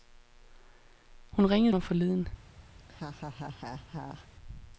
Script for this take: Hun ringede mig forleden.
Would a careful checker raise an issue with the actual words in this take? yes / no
no